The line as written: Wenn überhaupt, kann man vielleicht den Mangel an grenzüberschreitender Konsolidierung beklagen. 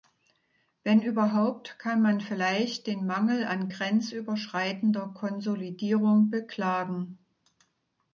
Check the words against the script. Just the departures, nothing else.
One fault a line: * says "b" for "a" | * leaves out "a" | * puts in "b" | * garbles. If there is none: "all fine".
all fine